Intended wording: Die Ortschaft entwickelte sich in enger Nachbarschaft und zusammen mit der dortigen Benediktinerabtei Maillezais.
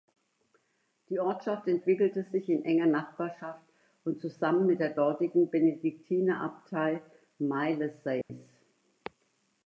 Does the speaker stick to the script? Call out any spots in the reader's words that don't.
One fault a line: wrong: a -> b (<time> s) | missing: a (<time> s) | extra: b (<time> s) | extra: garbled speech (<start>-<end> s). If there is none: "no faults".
no faults